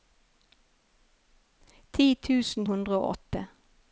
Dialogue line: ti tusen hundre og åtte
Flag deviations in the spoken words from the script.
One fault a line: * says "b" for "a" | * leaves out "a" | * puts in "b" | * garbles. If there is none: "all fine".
all fine